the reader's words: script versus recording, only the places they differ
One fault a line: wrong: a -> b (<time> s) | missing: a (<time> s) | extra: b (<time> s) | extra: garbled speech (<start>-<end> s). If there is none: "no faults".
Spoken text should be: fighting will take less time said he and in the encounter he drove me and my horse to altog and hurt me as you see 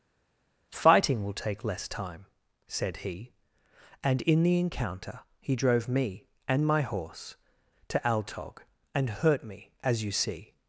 no faults